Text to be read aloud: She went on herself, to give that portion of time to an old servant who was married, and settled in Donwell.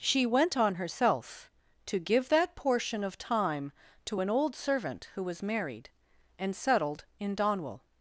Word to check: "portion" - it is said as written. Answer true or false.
true